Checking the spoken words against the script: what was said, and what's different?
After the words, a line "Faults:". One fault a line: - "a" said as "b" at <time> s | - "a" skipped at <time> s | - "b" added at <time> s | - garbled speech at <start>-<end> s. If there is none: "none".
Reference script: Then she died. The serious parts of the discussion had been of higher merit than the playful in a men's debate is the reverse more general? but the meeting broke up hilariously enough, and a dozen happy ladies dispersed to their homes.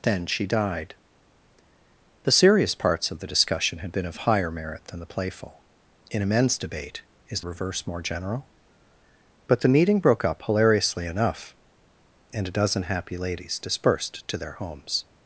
Then she died. The serious parts of the discussion had been of higher merit than the playful in a men's debate is reverse more general? but the meeting broke up hilariously enough, and a dozen happy ladies dispersed to their homes.
Faults:
- "the" skipped at 7.4 s